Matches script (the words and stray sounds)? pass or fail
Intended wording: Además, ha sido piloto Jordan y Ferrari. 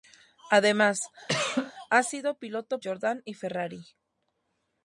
fail